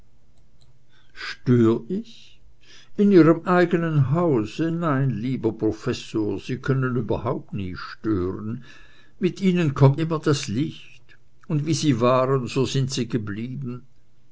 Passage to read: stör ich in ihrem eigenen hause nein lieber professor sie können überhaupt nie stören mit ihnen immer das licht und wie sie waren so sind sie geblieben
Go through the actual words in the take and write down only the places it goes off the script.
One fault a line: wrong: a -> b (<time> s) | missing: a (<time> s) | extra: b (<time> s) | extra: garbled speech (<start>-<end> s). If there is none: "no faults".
extra: kommt (9.7 s)